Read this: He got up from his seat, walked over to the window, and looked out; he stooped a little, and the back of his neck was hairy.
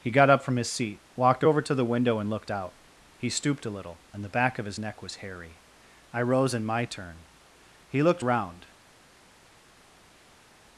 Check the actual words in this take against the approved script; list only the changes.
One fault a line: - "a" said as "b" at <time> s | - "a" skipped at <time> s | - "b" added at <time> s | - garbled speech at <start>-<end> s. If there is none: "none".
- "I rose in my turn He looked round" added at 6.1 s